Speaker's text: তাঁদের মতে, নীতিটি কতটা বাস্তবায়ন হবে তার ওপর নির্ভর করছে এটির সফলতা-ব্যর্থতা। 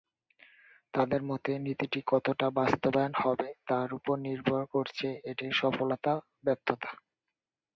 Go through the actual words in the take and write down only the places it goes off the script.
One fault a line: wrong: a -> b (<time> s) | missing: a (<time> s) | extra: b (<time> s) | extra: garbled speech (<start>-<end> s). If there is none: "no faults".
no faults